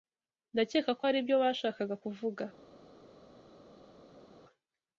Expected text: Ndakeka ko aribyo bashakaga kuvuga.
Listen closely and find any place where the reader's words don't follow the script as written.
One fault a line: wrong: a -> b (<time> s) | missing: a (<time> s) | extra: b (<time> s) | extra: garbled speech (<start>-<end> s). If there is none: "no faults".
no faults